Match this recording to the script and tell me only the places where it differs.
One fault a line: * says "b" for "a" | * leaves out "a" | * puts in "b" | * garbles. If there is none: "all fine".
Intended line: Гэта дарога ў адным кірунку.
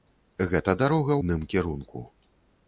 * leaves out "ў"